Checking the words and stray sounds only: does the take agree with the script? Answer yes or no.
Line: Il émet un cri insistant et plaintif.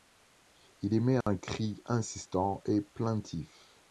no